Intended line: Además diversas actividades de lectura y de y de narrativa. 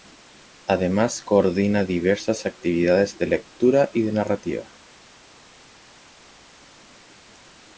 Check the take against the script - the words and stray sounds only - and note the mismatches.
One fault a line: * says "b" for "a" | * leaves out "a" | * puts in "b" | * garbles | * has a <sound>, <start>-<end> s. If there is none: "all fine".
* puts in "coordina"
* leaves out "y de"